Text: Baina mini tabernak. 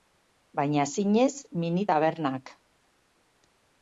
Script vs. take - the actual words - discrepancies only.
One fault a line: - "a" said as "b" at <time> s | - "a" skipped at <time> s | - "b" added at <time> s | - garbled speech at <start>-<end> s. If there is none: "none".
- "zinez" added at 0.9 s